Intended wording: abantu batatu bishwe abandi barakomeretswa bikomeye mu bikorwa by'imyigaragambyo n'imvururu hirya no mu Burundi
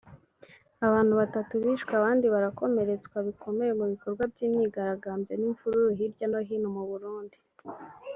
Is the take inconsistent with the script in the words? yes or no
yes